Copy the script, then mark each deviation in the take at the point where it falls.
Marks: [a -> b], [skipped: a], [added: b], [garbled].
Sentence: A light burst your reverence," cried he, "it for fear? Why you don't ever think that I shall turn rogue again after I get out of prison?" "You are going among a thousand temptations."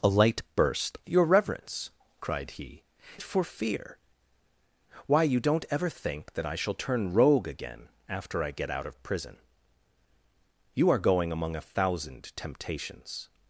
A light burst your reverence," cried he, "it for fear? Why you don't ever think that I shall turn rogue again after I get out of prison?" "You are going among a thousand temptations."